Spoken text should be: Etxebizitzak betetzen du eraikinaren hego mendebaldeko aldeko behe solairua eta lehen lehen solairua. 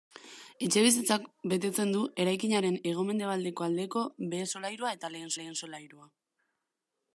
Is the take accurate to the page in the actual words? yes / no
yes